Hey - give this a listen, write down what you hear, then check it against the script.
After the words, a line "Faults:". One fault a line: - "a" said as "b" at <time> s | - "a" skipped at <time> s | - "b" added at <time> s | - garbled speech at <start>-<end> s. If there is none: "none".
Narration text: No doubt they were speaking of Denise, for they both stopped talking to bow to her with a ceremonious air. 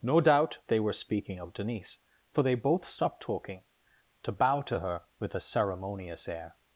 No doubt they were speaking of Denise, for they both stopped talking to bow to her with a ceremonious air.
Faults:
none